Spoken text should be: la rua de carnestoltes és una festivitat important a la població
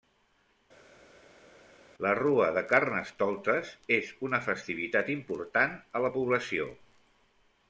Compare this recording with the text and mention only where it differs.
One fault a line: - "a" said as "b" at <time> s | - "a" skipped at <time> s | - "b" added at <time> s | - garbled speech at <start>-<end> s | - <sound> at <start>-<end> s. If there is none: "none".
none